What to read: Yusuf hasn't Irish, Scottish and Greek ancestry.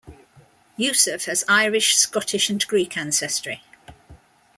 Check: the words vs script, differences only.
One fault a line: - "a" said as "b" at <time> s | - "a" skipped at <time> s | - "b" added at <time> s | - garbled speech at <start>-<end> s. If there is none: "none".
- "hasn't" said as "has" at 1.2 s